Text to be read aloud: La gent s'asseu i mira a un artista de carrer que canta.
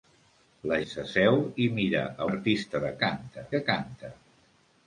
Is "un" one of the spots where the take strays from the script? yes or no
yes